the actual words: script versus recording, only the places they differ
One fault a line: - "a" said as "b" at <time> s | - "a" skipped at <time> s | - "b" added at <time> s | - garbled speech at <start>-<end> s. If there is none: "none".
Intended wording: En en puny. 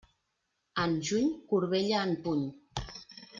- "juny corbella" added at 1.1 s